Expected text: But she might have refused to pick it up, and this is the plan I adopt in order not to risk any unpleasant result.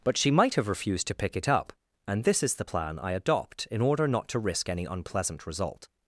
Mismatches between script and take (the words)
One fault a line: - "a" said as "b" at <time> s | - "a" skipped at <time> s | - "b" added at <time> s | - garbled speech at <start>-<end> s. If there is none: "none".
none